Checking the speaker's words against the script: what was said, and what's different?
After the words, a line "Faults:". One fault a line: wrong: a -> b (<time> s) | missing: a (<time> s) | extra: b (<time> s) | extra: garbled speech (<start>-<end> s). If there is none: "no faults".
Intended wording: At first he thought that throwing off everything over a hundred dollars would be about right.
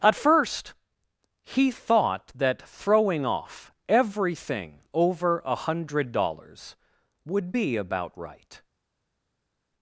At first he thought that throwing off everything over a hundred dollars would be about right.
Faults:
no faults